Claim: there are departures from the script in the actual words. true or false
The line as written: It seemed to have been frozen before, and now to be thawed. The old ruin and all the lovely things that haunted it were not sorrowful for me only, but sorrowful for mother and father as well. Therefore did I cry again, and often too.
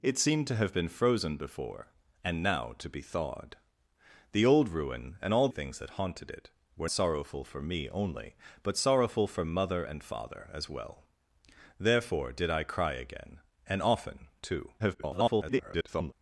true